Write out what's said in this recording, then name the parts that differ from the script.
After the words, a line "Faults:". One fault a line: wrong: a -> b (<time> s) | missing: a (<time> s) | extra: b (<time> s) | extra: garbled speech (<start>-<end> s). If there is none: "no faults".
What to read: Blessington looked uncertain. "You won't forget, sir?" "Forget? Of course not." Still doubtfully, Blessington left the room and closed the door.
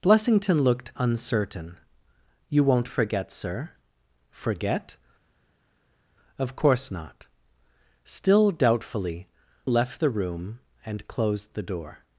Blessington looked uncertain. "You won't forget, sir?" "Forget? Of course not." Still doubtfully, Left the room and closed the door.
Faults:
missing: Blessington (9.3 s)